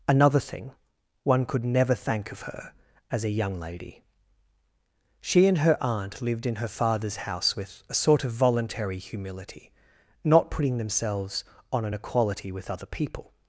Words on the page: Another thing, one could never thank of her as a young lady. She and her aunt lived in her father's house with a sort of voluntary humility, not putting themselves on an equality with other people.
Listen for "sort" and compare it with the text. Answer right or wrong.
right